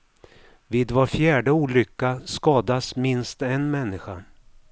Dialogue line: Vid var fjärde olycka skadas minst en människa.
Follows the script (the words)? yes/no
yes